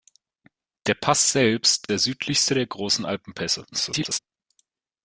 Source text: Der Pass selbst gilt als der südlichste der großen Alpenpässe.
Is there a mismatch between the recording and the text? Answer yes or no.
yes